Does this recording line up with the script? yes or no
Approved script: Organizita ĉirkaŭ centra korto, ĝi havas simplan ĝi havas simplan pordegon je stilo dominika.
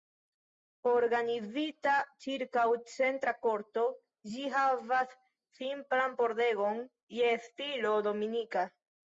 no